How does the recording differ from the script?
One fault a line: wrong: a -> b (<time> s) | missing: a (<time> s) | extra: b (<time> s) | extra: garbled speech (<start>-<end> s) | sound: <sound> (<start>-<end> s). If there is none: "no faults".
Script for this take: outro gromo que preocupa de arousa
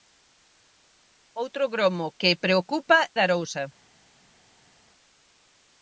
no faults